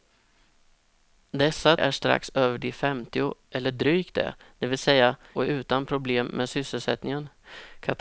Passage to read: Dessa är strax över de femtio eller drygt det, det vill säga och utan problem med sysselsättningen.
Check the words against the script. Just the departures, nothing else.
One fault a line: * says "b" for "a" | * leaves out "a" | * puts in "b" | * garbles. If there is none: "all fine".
all fine